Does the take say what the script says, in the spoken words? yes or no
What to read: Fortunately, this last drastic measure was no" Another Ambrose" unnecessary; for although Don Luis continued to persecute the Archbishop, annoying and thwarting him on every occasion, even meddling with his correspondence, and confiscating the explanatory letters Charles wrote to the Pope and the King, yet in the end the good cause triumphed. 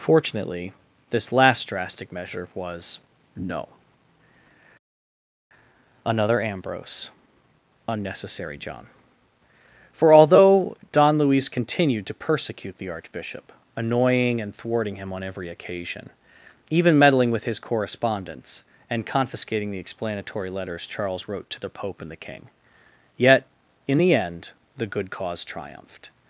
no